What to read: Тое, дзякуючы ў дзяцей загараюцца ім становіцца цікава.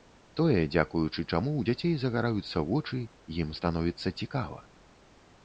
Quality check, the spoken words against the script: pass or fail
fail